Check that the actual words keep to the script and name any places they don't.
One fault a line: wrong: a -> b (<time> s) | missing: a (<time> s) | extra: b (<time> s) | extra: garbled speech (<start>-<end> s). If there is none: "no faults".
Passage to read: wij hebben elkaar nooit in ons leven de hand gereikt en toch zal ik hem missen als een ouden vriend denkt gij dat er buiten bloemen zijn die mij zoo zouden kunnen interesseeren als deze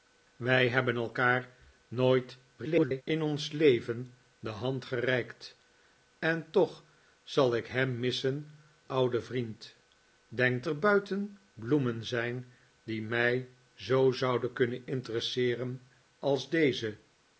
extra: garbled speech (2.6-3.0 s)
missing: als een (8.5 s)
missing: gij dat (10.7 s)